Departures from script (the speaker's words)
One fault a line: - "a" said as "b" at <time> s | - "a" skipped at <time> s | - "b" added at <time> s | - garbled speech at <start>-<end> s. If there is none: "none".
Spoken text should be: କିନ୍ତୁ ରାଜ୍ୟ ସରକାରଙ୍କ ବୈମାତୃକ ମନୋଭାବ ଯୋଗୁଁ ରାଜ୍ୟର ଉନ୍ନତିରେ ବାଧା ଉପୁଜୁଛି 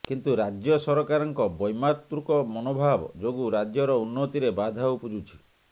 none